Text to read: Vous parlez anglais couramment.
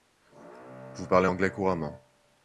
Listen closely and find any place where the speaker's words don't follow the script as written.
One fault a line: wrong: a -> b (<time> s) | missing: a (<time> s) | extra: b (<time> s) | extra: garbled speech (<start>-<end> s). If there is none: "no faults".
no faults